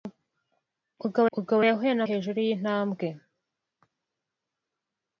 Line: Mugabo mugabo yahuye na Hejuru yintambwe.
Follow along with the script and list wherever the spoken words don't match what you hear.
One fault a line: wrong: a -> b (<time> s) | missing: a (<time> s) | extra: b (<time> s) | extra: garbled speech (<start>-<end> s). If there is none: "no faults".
no faults